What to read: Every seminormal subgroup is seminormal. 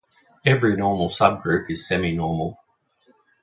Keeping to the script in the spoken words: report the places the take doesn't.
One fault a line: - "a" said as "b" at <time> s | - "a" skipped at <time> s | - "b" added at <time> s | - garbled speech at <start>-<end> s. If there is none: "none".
- "seminormal" said as "normal" at 0.7 s